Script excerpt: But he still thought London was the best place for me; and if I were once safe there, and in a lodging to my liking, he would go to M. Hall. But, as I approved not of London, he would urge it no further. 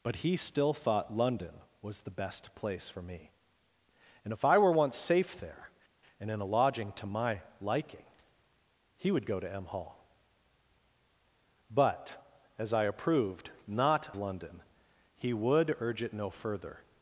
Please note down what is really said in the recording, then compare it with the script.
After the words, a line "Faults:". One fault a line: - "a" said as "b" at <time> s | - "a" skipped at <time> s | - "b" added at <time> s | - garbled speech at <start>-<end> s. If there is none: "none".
But he still thought London was the best place for me; and if I were once safe there, and in a lodging to my liking, he would go to M. Hall. But, as I approved not London, he would urge it no further.
Faults:
- "of" skipped at 14.1 s